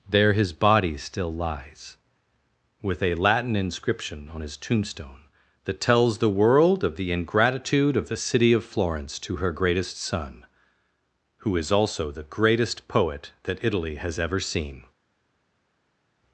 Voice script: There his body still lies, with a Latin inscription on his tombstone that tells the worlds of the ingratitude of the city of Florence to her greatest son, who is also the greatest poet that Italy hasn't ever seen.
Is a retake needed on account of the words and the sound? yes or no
yes